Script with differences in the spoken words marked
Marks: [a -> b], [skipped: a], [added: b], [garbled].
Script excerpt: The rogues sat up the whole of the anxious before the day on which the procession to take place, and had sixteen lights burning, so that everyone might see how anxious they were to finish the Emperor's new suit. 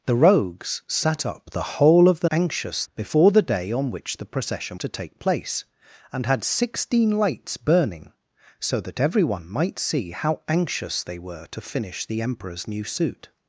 The rogues sat up the whole of the anxious before the day on which the procession to take place, and had sixteen lights burning, so that everyone might see how anxious they were to finish the Emperor's new suit.